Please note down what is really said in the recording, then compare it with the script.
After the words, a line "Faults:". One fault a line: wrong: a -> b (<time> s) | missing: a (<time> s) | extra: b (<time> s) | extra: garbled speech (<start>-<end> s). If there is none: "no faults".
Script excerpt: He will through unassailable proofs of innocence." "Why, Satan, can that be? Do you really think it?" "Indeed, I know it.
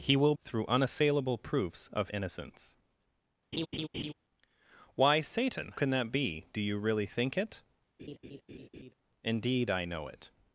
He will through unassailable proofs of innocence." "Why, Satan, can that be? Do you really think it?" "Indeed, I know it.
Faults:
no faults